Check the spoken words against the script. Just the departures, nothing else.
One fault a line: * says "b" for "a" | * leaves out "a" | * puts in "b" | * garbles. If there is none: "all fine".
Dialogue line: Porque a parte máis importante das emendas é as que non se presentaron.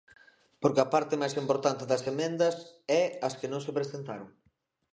all fine